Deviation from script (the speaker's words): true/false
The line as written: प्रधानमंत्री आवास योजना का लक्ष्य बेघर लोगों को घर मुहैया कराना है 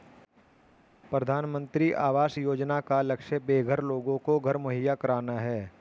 false